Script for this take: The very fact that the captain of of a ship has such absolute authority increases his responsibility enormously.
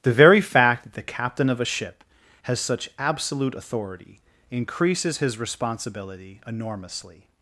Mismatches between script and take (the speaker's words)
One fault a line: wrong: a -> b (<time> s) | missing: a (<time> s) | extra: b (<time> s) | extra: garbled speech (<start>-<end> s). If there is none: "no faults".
missing: of (1.6 s)